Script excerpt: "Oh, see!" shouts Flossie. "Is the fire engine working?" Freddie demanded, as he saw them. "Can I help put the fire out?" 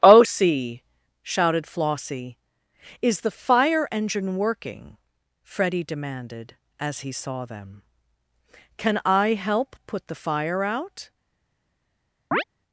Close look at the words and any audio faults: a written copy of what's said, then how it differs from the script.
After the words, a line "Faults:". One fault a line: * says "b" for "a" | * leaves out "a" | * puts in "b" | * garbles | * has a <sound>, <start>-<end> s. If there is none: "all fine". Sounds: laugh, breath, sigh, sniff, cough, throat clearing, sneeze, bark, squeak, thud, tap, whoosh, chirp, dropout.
"Oh, see!" shouted Flossie. "Is the fire engine working?" Freddie demanded, as he saw them. "Can I help put the fire out?"
Faults:
* says "shouted" for "shouts"
* has a chirp, 12.3-12.4 s